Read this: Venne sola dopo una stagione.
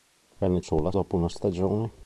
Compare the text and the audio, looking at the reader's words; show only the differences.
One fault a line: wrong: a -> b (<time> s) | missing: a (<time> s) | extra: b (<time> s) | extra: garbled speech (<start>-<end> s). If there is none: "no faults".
no faults